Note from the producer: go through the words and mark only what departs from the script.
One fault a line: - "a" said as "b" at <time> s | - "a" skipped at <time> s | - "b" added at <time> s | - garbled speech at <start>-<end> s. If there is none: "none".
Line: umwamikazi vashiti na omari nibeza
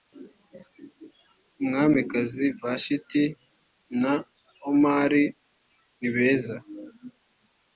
none